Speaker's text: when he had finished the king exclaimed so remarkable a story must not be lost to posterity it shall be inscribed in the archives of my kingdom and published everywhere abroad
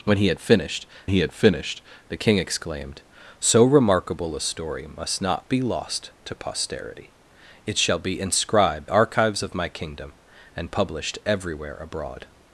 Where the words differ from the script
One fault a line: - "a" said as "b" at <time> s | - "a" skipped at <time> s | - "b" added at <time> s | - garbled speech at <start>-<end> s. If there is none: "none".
- "he had finished" added at 1.1 s
- "in the" skipped at 8.9 s